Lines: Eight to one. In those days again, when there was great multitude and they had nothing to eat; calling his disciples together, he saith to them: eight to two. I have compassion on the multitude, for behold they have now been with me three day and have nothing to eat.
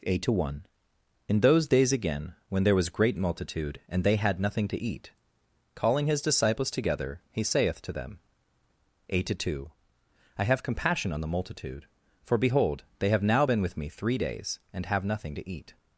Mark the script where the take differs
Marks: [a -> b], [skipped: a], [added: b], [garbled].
Eight to one. In those days again, when there was great multitude and they had nothing to eat; calling his disciples together, he saith to them: eight to two. I have compassion on the multitude, for behold they have now been with me three [day -> days] and have nothing to eat.